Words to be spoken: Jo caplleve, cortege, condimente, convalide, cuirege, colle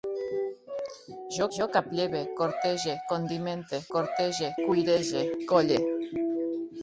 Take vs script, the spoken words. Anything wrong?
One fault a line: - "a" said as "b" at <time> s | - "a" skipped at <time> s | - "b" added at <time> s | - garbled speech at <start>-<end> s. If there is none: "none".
- "jo" added at 1.6 s
- "convalide" said as "cortege" at 3.9 s